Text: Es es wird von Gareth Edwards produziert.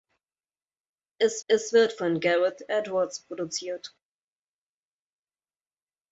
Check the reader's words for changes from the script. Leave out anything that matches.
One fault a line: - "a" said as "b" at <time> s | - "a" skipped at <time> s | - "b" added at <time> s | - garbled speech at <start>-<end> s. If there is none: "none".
none